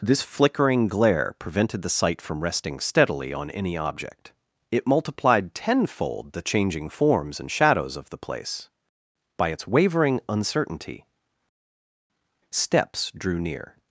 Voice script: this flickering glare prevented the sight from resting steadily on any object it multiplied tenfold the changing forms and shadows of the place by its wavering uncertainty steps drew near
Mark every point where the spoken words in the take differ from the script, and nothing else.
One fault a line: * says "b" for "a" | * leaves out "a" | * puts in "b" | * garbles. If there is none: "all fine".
all fine